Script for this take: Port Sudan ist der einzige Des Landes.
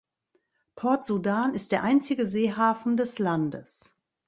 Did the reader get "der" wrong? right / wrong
right